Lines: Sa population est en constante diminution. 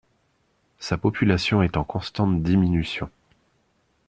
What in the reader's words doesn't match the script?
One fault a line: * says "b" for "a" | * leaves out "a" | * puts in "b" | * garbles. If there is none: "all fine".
all fine